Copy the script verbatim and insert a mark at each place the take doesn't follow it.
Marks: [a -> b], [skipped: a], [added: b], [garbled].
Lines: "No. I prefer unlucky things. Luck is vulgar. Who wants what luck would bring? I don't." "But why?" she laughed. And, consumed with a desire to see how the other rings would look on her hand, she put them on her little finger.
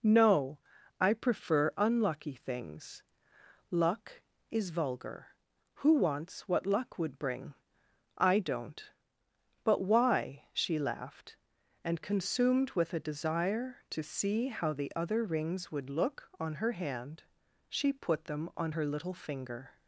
"No. I prefer unlucky things. Luck is vulgar. Who wants what luck would bring? I don't." "But why?" she laughed. And, consumed with a desire to see how the other rings would look on her hand, she put them on her little finger.